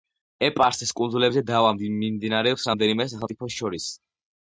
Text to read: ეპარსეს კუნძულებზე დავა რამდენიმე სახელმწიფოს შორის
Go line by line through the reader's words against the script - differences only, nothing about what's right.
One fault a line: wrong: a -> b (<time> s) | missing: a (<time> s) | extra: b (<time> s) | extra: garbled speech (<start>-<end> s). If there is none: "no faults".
extra: მიმდინარეობს (1.8 s)